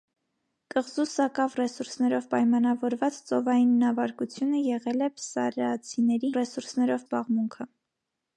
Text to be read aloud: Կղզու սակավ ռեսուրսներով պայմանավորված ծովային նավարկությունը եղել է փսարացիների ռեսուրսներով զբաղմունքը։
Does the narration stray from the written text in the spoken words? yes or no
no